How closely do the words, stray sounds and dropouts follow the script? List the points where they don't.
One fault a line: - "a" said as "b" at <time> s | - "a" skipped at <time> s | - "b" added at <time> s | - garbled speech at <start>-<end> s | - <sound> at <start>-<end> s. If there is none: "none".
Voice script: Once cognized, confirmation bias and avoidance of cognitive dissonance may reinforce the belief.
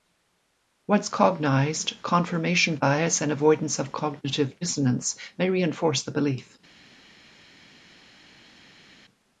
none